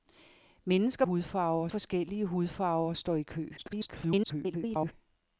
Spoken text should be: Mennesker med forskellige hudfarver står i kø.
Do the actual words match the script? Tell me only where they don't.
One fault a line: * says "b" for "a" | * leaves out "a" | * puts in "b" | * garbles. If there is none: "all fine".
* says "hudfarver" for "med"
* garbles